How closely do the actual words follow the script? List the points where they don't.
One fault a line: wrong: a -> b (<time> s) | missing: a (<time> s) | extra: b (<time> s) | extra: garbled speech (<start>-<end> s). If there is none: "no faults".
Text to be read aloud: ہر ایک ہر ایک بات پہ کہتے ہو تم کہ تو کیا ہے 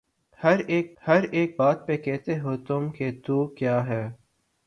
no faults